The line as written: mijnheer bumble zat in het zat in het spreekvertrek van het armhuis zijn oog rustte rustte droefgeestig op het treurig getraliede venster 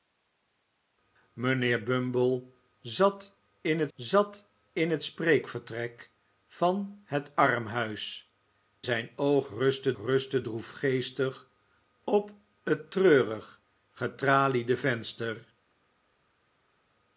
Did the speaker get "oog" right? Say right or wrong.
right